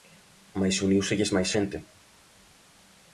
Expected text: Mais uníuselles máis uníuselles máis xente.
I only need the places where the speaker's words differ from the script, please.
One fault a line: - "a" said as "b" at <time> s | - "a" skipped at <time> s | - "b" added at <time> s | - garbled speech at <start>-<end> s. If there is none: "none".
- "uníuselles máis" skipped at 1.5 s